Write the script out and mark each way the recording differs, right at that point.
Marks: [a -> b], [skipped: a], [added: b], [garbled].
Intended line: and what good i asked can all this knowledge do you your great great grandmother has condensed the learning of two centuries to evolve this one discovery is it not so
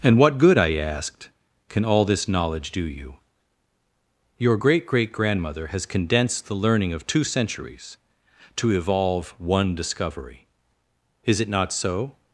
and what good i asked can all this knowledge do you your great great grandmother has condensed the learning of two centuries to evolve [skipped: this] one discovery is it not so